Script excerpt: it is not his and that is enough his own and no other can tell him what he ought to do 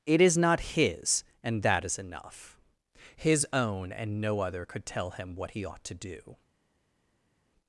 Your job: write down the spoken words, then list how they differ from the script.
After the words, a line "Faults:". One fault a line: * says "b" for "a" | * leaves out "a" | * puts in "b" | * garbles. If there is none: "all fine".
it is not his and that is enough his own and no other could tell him what he ought to do
Faults:
* says "could" for "can"